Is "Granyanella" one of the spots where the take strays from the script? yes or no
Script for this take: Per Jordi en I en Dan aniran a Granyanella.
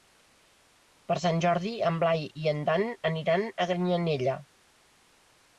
no